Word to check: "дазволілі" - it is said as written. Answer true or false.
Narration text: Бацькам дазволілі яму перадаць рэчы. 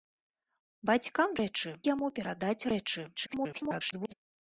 false